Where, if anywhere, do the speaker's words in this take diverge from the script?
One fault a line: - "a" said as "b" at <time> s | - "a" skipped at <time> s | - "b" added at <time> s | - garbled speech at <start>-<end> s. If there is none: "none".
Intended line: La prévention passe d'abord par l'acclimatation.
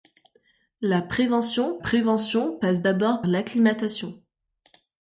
- "prévention" added at 1.8 s
- "par" skipped at 3.2 s